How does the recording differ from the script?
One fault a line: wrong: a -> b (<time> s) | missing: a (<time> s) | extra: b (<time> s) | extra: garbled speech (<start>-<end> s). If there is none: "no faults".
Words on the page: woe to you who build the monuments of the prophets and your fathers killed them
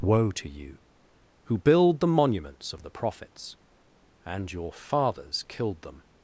no faults